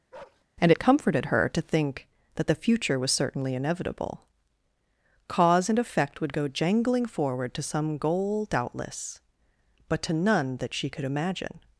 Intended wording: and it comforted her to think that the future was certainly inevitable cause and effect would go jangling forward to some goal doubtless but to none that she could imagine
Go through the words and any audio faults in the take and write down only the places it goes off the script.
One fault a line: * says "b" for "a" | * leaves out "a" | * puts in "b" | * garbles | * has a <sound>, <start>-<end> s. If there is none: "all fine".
* has a bark, 0.1-0.4 s